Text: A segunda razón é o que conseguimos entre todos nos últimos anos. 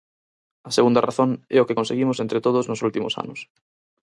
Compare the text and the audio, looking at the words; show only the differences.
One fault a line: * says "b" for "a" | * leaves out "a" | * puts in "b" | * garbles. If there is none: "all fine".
all fine